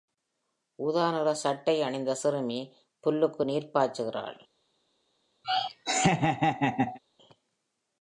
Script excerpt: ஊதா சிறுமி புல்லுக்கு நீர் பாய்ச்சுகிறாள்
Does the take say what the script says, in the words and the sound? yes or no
no